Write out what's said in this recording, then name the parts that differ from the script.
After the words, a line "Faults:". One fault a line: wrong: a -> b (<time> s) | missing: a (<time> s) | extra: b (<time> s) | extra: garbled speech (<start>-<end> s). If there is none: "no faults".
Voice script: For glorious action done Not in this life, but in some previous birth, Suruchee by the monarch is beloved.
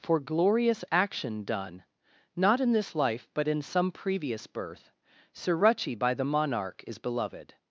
For glorious action done Not in this life, but in some previous birth, Suruchee by the monarch is beloved.
Faults:
no faults